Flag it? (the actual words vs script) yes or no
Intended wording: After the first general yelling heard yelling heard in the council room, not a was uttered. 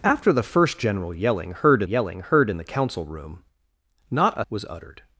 no